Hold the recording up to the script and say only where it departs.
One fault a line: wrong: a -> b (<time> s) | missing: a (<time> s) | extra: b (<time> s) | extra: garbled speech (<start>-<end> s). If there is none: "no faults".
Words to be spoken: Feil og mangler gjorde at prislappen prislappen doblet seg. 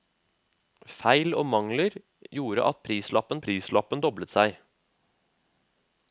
no faults